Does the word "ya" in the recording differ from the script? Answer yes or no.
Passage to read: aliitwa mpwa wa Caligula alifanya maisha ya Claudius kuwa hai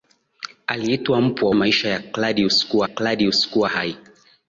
yes